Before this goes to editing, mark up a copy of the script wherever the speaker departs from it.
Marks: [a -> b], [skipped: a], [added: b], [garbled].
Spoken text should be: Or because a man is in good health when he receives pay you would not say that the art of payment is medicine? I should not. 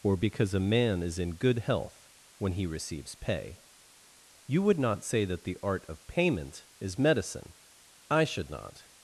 Or because a man is in good health when he receives pay you would not say that the art of payment is medicine? I should not.